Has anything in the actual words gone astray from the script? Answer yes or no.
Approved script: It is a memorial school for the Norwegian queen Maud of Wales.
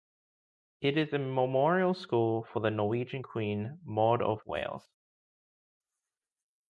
no